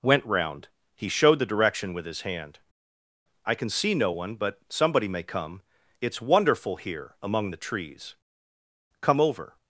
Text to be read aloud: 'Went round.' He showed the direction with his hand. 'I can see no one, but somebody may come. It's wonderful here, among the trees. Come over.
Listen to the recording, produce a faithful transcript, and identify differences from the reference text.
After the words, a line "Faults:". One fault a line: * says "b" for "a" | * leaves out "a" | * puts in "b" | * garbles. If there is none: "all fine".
'Went round.' He showed the direction with his hand. 'I can see no one, but somebody may come. It's wonderful here, among the trees. Come over.
Faults:
all fine